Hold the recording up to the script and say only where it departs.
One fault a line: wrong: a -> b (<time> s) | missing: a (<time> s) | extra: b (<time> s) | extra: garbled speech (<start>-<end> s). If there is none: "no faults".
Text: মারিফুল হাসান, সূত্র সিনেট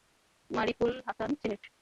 missing: সূত্র (1.3 s)